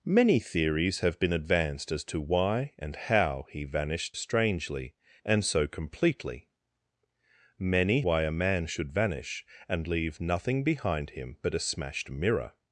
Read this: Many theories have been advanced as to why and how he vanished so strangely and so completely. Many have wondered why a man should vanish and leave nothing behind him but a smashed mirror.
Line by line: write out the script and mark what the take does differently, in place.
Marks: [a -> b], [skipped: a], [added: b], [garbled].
Many theories have been advanced as to why and how he vanished [skipped: so] strangely and so completely. Many [skipped: have wondered] why a man should vanish and leave nothing behind him but a smashed mirror.